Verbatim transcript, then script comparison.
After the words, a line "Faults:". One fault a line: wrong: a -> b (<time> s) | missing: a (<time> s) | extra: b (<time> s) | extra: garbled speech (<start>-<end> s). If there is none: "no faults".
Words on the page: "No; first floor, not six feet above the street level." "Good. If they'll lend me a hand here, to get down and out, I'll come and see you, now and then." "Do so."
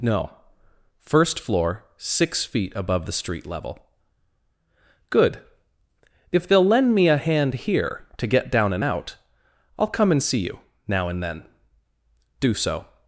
"No; first floor, six feet above the street level." "Good. If they'll lend me a hand here, to get down and out, I'll come and see you, now and then." "Do so."
Faults:
missing: not (1.9 s)